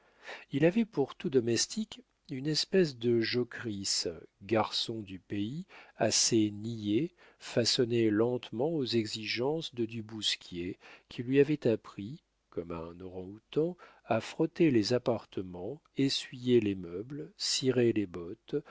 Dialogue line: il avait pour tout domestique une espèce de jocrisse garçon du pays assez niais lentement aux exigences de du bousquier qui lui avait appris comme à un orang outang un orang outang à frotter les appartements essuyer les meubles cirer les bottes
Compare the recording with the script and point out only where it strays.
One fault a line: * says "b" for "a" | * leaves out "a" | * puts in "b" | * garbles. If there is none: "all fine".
* puts in "façonné"
* leaves out "un orang outang"